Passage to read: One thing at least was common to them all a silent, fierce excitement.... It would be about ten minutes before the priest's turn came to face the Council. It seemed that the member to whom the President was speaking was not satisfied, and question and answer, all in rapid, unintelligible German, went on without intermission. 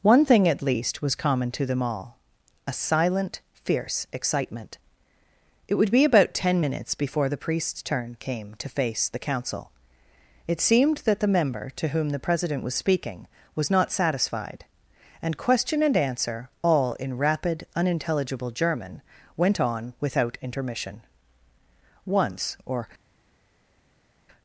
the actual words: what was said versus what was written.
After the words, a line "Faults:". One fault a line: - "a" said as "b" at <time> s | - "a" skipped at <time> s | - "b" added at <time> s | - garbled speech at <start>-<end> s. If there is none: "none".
One thing at least was common to them all a silent, fierce excitement.... It would be about ten minutes before the priest's turn came to face the Council. It seemed that the member to whom the President was speaking was not satisfied, and question and answer, all in rapid, unintelligible German, went on without intermission. Once or
Faults:
- "Once or" added at 22.1 s